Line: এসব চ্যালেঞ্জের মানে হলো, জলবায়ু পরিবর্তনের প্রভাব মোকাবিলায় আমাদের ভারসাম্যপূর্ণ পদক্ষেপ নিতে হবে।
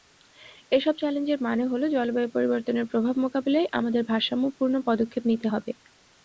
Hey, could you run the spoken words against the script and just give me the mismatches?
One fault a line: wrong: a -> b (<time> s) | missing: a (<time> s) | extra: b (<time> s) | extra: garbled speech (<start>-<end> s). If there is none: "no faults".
no faults